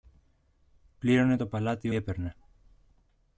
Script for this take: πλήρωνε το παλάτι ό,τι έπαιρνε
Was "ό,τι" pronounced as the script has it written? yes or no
no